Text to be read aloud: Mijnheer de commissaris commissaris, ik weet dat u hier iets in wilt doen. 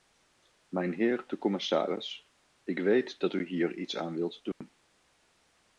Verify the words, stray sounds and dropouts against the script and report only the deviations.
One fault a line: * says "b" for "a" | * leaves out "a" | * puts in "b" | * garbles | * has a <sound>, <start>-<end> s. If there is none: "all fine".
* leaves out "commissaris"
* says "aan" for "in"
* has a dropout, 4.5-4.6 s